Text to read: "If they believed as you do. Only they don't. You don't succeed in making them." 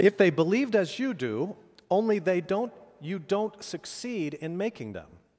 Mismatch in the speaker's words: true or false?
false